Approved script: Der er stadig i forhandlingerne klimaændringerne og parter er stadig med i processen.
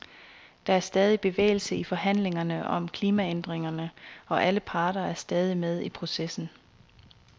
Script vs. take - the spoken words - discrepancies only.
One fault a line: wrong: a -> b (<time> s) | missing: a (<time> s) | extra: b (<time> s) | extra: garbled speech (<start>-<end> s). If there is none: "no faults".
extra: bevægelse (1.2 s)
extra: om (2.7 s)
extra: alle (4.4 s)